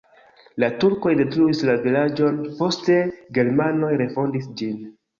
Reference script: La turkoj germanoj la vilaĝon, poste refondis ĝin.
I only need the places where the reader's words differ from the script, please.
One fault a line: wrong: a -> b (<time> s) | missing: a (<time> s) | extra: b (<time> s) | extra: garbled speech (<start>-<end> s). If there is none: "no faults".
wrong: germanoj -> detruis (1.2 s)
extra: germanoj (3.4 s)